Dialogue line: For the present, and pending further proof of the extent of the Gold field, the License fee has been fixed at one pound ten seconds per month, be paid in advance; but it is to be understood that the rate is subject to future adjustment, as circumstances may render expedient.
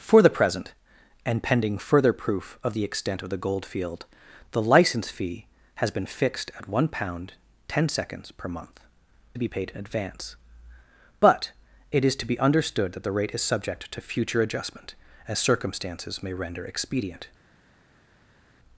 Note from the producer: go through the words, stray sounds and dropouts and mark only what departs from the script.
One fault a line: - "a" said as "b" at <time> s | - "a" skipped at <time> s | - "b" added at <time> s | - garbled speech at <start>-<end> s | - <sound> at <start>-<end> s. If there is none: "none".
none